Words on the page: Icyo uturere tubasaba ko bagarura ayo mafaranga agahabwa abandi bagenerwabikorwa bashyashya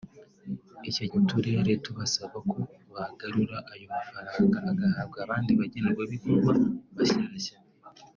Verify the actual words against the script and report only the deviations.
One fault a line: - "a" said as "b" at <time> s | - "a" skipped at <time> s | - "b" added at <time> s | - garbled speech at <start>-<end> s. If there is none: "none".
none